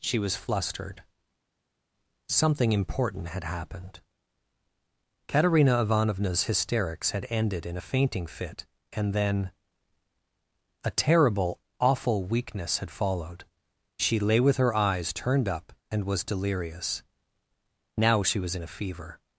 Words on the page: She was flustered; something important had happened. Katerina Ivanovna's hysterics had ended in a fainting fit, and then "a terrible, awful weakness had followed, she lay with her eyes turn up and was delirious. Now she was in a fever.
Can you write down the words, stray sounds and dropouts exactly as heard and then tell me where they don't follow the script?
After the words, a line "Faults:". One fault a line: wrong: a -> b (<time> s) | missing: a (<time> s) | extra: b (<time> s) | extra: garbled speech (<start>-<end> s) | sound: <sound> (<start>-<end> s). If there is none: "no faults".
She was flustered; something important had happened. Katerina Ivanovna's hysterics had ended in a fainting fit, and then "a terrible, awful weakness had followed, she lay with her eyes turned up and was delirious. Now she was in a fever.
Faults:
wrong: turn -> turned (15.1 s)